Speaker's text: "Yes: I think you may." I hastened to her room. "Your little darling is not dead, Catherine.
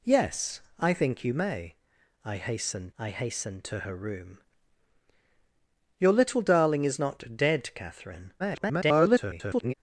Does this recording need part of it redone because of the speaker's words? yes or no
yes